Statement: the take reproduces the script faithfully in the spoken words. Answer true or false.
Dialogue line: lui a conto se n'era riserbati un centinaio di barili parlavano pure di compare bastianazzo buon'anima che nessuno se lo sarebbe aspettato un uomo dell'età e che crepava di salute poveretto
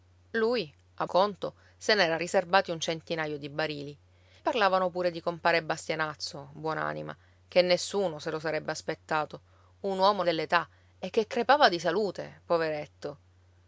true